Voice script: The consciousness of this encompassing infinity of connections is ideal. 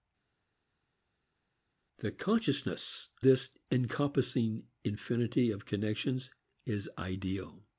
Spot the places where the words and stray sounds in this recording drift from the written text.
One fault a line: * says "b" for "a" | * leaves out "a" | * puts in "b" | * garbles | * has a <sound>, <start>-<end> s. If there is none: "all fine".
* leaves out "of"